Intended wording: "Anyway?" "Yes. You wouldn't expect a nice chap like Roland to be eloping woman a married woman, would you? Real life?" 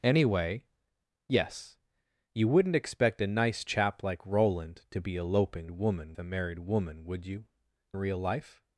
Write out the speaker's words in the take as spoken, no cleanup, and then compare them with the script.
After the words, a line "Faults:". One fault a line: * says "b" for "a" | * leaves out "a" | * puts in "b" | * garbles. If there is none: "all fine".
"Anyway?" "Yes. You wouldn't expect a nice chap like Roland to be eloping woman a married woman, would you? Real life?"
Faults:
all fine